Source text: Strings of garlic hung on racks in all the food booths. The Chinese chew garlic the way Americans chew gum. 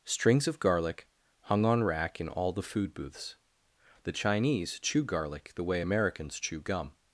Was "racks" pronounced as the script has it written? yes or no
no